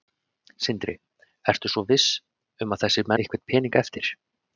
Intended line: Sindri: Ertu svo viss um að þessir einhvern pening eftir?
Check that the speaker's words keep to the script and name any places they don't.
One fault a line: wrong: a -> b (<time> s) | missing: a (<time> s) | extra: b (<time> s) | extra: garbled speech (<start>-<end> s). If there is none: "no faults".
no faults